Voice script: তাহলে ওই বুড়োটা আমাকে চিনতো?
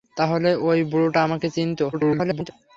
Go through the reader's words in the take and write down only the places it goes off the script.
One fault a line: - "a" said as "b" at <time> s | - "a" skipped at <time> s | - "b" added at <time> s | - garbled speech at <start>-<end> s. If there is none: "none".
- garbled speech at 1.9-2.5 s